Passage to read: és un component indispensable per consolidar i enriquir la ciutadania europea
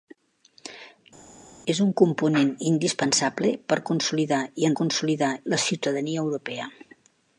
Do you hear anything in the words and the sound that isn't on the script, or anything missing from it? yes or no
yes